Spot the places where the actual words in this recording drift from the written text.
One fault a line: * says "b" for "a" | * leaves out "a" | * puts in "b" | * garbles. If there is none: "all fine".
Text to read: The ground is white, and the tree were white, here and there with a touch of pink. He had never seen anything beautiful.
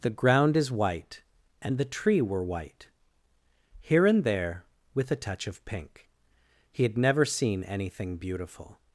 all fine